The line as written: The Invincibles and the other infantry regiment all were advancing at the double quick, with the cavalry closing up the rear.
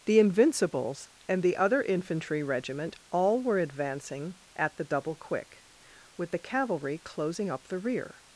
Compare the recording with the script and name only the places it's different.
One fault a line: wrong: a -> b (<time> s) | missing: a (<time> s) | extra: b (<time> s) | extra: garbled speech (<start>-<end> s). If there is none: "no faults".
no faults